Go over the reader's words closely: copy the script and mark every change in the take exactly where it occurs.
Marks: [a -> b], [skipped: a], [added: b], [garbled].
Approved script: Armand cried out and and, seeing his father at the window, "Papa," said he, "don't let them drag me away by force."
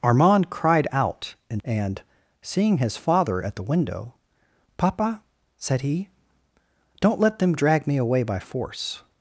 Armand cried out and and, seeing his father at the window, "Papa," said he, "don't let them drag me away by force."